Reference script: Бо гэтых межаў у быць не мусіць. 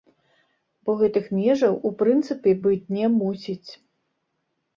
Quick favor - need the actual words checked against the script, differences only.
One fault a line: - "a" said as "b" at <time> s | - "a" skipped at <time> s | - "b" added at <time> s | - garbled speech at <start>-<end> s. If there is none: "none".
- "прынцыпе" added at 2.0 s